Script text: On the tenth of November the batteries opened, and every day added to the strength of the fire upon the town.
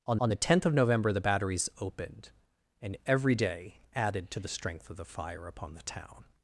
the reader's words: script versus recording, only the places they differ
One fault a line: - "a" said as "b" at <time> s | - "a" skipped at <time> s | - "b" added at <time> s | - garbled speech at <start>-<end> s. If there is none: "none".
- "on" added at 0.2 s